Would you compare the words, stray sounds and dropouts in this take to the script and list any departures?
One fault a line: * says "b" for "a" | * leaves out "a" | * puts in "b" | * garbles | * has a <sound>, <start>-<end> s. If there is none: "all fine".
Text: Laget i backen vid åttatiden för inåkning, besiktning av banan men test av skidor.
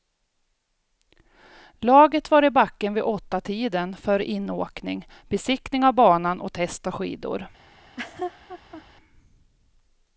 * puts in "var"
* says "och" for "men"
* has a laugh, 7.7-8.8 s